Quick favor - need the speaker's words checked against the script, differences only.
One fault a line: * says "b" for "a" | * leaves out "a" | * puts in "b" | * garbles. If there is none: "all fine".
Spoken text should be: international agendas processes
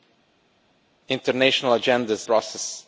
all fine